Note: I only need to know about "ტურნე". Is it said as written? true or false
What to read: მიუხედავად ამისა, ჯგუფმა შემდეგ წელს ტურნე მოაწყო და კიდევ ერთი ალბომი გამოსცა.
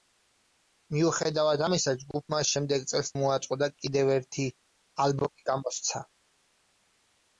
false